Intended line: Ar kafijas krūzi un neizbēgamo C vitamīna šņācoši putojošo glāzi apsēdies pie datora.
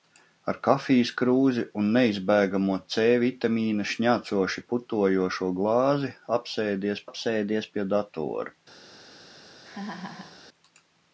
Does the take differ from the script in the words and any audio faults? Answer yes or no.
yes